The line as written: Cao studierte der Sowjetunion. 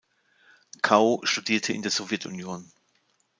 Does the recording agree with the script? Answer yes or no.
no